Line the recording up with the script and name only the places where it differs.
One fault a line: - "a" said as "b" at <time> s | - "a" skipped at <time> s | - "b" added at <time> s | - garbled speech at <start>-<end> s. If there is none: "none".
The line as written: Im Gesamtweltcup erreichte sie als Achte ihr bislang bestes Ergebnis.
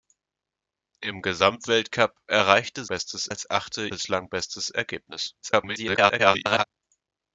- "sie" said as "bestes" at 2.9 s
- "ihr" skipped at 3.9 s
- garbled speech at 5.4-6.6 s